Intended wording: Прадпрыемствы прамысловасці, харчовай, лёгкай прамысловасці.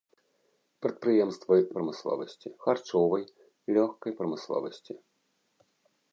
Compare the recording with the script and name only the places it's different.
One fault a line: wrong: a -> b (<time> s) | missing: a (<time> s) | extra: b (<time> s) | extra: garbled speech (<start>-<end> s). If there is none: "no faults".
no faults